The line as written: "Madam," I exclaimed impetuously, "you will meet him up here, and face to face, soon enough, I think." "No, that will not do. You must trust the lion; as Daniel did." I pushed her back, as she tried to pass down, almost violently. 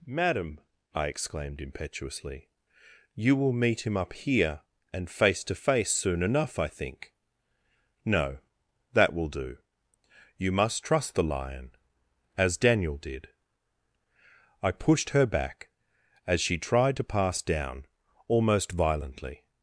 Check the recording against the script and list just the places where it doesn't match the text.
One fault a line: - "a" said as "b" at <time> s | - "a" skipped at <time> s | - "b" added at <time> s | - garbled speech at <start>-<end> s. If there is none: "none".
- "not" skipped at 9.3 s